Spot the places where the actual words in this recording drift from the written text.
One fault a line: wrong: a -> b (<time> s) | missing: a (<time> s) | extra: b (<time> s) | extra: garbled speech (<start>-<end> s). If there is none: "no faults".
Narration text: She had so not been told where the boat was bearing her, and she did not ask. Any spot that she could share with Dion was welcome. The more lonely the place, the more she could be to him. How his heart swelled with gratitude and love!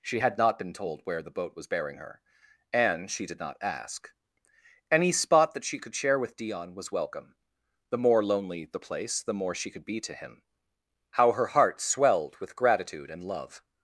missing: so (0.4 s)
wrong: his -> her (11.3 s)